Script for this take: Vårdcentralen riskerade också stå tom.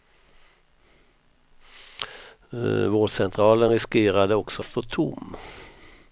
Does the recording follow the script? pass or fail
pass